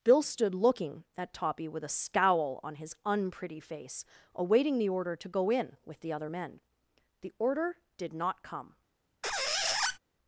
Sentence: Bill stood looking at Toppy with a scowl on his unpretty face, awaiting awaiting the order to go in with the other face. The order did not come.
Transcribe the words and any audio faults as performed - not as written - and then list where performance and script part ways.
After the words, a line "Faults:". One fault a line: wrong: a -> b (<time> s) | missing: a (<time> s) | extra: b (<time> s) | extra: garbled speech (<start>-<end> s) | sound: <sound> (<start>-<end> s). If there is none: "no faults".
Bill stood looking at Toppy with a scowl on his unpretty face, awaiting the order to go in with the other men. The order did not come.
Faults:
missing: awaiting (4.8 s)
wrong: face -> men (6.3 s)
sound: squeak (9.2-10.0 s)